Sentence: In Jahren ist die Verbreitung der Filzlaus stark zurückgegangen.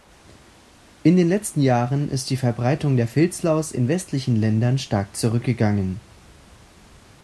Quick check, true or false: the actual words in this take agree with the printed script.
false